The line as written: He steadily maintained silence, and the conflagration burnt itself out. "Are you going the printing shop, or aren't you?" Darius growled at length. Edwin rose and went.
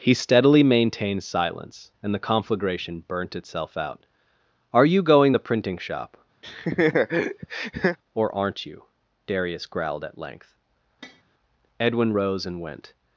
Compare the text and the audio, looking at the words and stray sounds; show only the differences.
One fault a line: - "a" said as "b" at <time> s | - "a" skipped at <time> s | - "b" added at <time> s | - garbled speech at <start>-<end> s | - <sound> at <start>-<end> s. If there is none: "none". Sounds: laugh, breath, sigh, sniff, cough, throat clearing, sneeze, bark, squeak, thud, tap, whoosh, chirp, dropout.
- laugh at 6.4-8.0 s
- tap at 11.0-11.2 s